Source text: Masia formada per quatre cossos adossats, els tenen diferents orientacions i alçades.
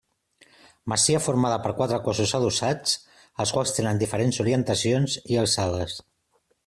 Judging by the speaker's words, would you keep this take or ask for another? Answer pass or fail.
fail